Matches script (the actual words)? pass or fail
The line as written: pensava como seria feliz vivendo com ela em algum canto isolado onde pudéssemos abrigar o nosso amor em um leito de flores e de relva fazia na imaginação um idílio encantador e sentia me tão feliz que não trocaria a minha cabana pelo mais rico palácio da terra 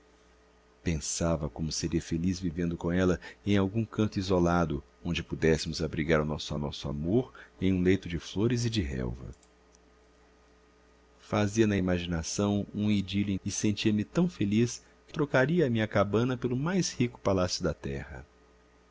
fail